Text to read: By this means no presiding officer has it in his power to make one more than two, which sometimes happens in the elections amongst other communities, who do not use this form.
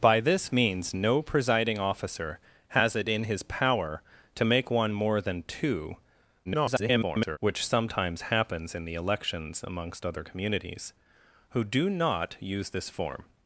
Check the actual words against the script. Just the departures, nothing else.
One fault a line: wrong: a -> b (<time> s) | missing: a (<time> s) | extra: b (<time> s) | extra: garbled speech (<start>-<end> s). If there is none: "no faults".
extra: garbled speech (6.5-7.4 s)